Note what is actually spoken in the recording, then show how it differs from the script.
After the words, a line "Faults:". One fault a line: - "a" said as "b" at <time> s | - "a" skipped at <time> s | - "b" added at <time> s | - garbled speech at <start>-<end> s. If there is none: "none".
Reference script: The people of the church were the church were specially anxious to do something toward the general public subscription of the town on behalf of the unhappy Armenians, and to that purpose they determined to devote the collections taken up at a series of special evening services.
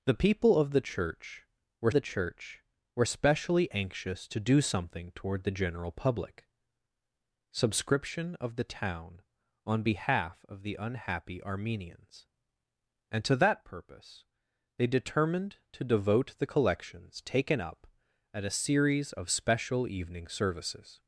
The people of the church were the church were specially anxious to do something toward the general public subscription of the town on behalf of the unhappy Armenians, and to that purpose they determined to devote the collections taken up at a series of special evening services.
Faults:
none